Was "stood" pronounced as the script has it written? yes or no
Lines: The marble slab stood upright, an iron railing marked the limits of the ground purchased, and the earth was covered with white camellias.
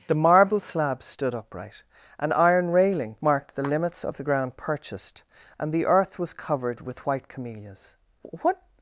yes